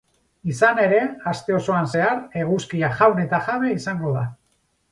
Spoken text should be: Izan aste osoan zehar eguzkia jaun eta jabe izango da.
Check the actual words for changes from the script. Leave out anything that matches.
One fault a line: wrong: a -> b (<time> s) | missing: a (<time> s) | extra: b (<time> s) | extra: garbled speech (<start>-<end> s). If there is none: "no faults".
extra: ere (0.8 s)